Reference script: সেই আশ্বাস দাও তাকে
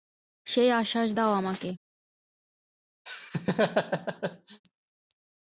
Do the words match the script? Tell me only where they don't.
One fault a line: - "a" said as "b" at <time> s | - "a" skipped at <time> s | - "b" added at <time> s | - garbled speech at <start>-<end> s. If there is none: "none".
- "তাকে" said as "আমাকে" at 1.3 s